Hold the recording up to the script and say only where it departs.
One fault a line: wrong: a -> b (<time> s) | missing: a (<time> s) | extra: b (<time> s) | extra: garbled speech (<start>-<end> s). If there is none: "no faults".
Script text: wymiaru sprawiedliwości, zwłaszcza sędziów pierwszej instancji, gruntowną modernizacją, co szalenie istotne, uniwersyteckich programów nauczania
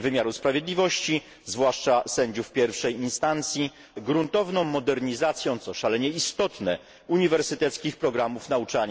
no faults